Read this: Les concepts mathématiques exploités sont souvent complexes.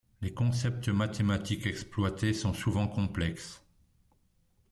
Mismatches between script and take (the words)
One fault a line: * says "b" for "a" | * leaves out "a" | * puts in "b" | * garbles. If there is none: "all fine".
all fine